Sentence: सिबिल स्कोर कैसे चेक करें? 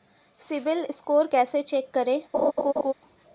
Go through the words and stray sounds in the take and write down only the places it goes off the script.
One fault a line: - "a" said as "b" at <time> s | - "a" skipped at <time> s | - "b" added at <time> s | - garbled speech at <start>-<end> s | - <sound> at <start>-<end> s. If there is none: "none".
- laugh at 2.3-2.9 s